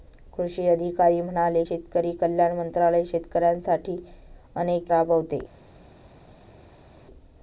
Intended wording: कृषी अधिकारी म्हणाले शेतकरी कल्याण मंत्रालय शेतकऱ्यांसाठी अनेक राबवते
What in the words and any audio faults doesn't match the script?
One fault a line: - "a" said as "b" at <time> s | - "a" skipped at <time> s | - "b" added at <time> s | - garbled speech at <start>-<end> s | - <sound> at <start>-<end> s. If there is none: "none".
none